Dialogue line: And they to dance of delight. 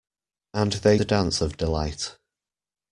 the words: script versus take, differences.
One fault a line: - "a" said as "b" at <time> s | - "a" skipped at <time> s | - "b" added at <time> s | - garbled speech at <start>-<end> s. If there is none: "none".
none